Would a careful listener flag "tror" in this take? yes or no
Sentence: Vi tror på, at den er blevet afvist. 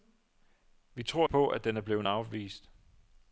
no